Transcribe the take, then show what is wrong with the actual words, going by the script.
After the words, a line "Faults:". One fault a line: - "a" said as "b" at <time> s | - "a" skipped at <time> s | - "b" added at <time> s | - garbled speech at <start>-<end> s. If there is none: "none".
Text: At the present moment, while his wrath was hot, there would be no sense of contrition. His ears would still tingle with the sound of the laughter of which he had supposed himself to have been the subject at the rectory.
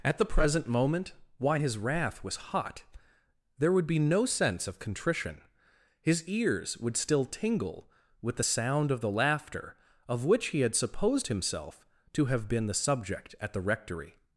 At the present moment, why his wrath was hot, there would be no sense of contrition. His ears would still tingle with the sound of the laughter of which he had supposed himself to have been the subject at the rectory.
Faults:
- "while" said as "why" at 1.4 s